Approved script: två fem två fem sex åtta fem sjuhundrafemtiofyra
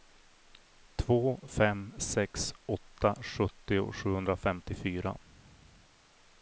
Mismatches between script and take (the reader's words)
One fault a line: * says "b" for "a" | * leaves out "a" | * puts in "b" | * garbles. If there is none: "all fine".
* leaves out "två fem"
* says "sjuttio" for "fem"